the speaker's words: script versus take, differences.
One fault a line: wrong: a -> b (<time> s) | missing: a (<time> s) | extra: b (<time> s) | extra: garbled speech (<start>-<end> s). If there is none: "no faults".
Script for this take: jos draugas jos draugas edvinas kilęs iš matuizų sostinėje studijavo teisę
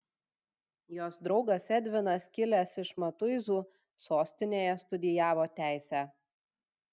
missing: jos draugas (1.7 s)